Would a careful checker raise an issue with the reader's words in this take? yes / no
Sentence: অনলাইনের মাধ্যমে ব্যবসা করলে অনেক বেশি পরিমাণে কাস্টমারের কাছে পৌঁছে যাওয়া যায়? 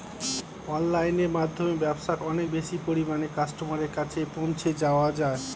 yes